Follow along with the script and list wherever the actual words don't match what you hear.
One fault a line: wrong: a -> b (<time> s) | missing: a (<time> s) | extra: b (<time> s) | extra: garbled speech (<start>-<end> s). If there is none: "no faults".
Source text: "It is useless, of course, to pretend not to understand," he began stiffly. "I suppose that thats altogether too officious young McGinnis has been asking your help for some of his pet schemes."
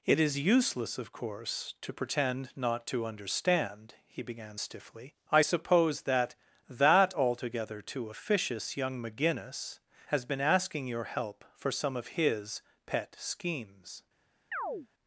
wrong: thats -> that (6.7 s)